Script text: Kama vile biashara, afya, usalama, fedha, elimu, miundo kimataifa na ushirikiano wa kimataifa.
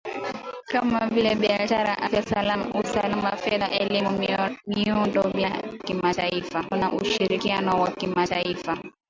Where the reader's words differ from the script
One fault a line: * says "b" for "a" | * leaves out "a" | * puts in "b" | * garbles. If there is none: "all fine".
all fine